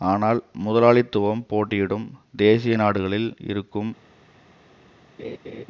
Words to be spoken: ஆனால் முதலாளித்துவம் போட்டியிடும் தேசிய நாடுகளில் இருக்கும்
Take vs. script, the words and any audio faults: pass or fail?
fail